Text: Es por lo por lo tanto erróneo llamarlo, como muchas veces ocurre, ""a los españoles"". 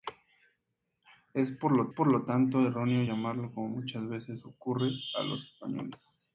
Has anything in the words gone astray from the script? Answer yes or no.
no